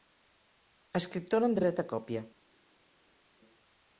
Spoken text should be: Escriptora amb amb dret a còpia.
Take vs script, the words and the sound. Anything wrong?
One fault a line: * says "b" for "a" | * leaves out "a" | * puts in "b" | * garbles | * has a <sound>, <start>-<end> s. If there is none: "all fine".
all fine